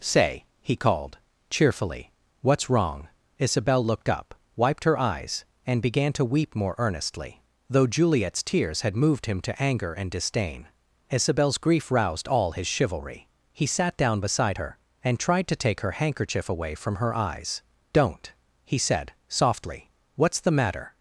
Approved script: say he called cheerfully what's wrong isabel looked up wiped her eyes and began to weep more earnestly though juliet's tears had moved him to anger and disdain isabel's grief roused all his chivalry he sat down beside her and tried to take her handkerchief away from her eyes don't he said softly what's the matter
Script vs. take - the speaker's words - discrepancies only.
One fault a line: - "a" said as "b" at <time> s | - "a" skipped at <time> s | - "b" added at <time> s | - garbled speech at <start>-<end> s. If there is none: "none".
none